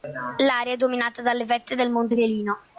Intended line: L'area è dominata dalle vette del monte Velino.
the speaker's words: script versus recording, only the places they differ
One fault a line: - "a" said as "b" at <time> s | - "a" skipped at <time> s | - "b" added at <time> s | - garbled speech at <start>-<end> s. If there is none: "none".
none